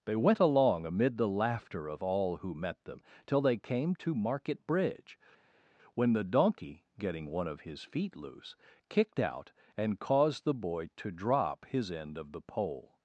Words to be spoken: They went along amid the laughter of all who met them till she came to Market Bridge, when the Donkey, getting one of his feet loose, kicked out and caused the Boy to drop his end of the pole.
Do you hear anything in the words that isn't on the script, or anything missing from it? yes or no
yes